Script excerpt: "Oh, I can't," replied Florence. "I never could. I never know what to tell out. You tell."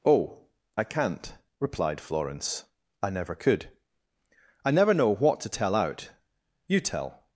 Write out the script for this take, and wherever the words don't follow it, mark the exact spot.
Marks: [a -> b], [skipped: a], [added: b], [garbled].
"Oh, I can't," replied Florence. "I never could. I never know what to tell out. You tell."